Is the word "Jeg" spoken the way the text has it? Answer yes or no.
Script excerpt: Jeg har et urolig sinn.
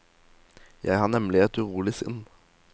yes